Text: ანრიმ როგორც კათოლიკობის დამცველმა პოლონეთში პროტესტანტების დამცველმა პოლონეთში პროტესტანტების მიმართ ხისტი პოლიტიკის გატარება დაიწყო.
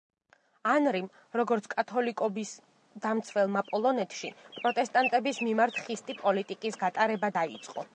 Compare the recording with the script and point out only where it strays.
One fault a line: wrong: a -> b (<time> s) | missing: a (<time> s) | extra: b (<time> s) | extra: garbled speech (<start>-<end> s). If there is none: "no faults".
missing: დამცველმა პოლონეთში პროტესტანტების (5.5 s)